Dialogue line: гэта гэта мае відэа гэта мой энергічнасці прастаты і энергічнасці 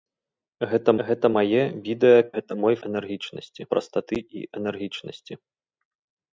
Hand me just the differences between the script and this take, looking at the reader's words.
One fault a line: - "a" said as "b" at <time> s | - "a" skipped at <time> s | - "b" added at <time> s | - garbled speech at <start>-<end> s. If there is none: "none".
none